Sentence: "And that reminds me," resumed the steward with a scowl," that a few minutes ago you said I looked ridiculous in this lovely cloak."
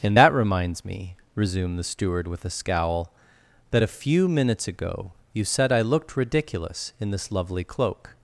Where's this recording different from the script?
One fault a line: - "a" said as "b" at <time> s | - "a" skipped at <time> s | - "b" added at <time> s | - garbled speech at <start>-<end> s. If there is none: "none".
none